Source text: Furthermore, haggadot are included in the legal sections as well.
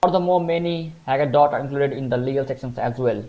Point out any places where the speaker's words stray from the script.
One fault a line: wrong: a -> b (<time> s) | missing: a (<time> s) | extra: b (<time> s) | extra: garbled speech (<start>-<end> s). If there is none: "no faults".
extra: many (0.4 s)